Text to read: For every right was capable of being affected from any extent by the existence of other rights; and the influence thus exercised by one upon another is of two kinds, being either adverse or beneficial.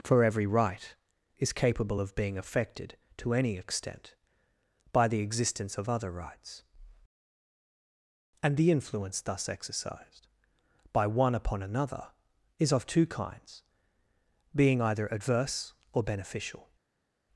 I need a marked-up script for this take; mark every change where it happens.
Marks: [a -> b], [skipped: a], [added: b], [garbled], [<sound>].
For every right [was -> is] capable of being affected [from -> to] any extent by the existence of other rights; and the influence thus exercised by one upon another is of two kinds, being either adverse or beneficial.